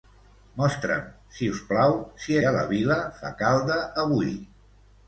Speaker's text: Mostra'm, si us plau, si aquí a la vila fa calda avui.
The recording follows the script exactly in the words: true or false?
false